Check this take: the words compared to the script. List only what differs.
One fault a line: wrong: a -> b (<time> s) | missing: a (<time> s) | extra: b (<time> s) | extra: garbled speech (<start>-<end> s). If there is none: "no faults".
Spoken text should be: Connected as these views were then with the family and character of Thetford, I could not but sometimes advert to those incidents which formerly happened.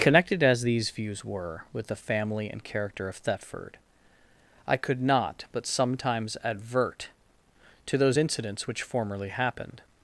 missing: then (1.6 s)